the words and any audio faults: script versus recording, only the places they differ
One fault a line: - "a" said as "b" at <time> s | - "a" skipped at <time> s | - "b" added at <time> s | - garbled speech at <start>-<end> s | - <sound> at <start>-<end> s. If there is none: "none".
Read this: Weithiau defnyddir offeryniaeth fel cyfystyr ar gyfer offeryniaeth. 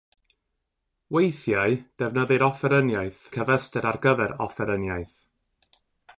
- "fel" skipped at 3.2 s